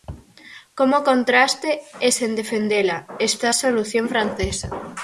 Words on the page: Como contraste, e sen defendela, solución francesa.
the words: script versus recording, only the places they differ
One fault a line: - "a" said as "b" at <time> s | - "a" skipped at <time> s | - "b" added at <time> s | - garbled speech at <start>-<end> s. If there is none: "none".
- "está a" added at 3.3 s